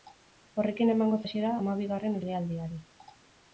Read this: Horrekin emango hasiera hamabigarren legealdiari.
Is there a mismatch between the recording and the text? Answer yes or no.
no